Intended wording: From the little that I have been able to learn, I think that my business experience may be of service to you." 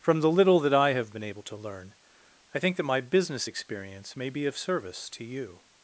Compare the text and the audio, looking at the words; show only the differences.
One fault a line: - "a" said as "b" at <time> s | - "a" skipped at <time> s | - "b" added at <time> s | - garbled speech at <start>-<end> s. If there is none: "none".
none